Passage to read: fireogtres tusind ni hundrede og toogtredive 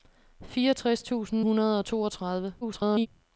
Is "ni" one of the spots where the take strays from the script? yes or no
yes